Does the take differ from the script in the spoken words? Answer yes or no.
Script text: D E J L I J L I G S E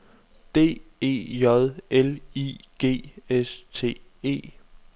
yes